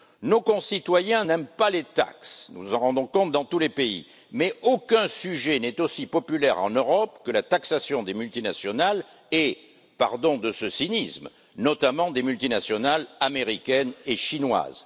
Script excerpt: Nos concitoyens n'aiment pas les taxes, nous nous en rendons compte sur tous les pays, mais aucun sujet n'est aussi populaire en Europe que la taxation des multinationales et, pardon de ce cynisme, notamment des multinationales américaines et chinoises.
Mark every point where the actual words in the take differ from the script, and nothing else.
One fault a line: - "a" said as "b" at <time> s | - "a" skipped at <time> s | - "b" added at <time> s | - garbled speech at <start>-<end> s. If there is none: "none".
- "sur" said as "dans" at 3.3 s